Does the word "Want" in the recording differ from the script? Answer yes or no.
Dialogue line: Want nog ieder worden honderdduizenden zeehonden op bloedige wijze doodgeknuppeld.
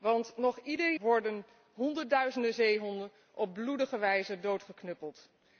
no